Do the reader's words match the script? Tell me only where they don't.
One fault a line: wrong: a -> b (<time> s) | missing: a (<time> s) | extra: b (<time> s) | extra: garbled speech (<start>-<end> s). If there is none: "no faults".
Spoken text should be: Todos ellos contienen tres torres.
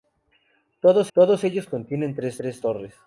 extra: todos (1.1 s)
extra: tres (2.4 s)